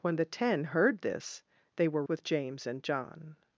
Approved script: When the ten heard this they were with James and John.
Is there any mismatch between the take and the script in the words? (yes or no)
no